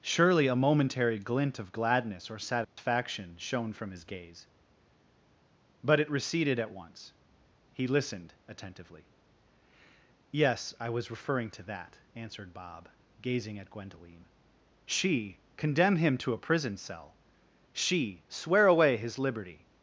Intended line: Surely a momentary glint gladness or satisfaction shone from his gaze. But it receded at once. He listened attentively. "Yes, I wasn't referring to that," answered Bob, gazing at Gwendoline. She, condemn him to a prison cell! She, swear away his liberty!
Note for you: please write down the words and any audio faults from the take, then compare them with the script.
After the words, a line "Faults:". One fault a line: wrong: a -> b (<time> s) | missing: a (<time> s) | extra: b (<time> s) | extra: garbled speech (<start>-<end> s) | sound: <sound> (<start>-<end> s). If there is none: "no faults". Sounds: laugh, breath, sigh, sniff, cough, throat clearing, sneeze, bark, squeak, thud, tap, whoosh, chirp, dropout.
Surely a momentary glint of gladness or satisfaction shone from his gaze. But it receded at once. He listened attentively. "Yes, I was referring to that," answered Bob, gazing at Gwendoline. She, condemn him to a prison cell! She, swear away his liberty!
Faults:
extra: of (1.6 s)
sound: dropout (2.6-2.8 s)
wrong: wasn't -> was (10.9 s)